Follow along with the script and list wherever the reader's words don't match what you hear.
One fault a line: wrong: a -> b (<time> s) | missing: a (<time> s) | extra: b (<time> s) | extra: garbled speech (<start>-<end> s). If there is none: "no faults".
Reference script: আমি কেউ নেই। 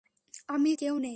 no faults